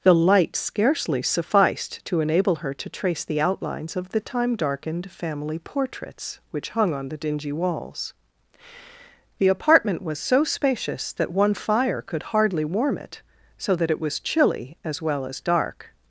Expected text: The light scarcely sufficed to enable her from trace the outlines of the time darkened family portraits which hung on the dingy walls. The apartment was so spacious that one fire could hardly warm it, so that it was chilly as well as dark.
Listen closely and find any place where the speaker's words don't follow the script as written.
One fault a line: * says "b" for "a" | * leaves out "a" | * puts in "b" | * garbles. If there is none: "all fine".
* says "to" for "from"